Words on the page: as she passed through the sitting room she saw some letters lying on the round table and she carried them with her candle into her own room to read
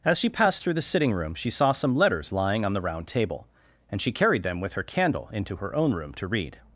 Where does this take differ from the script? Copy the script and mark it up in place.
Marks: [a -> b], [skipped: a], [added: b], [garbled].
as she passed through the sitting room she saw some letters lying on the round table and she carried them with her candle into her own room to read